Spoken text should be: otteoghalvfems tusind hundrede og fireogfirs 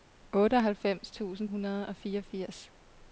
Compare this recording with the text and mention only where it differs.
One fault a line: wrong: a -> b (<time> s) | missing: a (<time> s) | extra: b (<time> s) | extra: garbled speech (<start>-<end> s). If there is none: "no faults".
no faults